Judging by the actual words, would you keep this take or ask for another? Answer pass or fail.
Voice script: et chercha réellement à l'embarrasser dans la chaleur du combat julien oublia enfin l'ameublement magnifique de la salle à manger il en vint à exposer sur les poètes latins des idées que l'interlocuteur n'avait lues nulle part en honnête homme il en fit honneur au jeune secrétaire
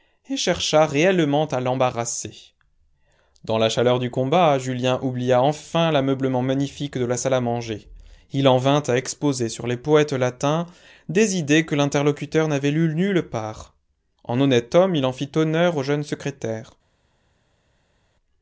pass